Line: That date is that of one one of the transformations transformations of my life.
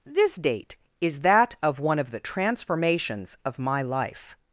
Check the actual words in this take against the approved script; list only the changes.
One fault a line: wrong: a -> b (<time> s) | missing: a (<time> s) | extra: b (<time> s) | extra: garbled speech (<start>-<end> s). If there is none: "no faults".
wrong: That -> This (0.1 s)
missing: one (2.0 s)
missing: transformations (3.4 s)